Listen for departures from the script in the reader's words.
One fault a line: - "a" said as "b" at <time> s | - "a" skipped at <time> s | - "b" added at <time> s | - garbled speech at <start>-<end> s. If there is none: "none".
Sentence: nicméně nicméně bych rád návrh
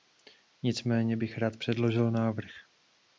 - "nicméně" skipped at 1.2 s
- "předložil" added at 1.6 s